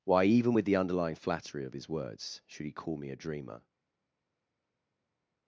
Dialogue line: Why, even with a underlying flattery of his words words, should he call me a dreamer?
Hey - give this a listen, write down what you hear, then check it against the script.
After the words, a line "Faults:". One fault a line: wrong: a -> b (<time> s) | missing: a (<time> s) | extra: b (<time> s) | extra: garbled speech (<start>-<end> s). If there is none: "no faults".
Why, even with the underlying flattery of his words, should he call me a dreamer?
Faults:
wrong: a -> the (0.6 s)
missing: words (2.4 s)